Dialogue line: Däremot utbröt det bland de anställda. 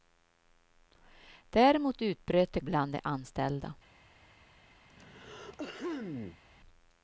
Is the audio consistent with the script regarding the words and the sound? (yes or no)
no